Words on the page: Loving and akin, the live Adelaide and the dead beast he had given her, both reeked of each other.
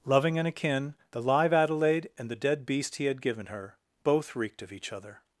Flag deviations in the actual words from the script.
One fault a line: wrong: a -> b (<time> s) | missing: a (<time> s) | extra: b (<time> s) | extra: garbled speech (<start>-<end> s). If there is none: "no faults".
no faults